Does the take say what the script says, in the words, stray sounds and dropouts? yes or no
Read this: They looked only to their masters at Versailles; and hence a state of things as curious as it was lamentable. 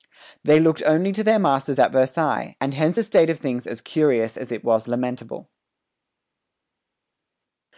yes